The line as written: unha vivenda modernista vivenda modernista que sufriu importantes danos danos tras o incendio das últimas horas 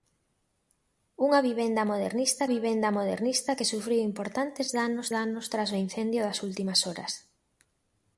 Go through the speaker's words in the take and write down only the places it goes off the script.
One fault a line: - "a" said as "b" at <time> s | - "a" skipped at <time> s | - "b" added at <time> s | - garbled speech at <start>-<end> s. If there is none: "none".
none